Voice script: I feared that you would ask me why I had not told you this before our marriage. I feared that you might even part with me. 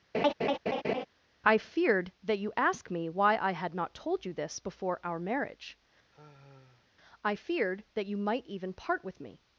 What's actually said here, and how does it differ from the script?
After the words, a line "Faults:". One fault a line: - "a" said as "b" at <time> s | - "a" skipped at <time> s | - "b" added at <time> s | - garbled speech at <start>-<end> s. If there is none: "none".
I feared that you ask me why I had not told you this before our marriage. I feared that you might even part with me.
Faults:
- "would" skipped at 2.5 s